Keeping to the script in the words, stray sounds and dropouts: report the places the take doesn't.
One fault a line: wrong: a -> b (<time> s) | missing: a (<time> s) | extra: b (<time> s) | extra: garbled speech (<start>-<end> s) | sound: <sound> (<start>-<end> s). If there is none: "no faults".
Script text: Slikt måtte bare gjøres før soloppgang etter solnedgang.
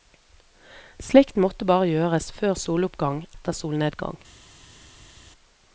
no faults